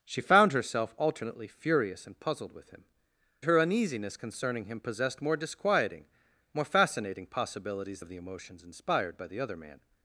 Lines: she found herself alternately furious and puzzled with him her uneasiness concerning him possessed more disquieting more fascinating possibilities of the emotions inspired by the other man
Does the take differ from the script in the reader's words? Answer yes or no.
no